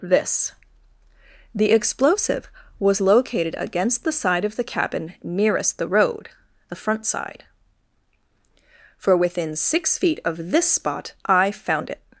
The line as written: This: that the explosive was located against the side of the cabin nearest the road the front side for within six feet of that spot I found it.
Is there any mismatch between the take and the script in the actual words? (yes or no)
yes